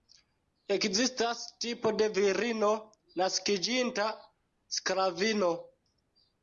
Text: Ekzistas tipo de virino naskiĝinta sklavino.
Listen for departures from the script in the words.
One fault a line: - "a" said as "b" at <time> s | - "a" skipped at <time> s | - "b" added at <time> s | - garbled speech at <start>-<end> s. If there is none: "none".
none